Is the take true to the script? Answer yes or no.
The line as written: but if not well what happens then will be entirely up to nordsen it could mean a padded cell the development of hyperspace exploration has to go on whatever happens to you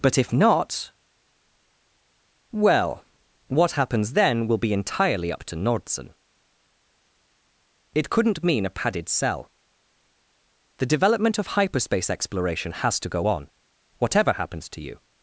no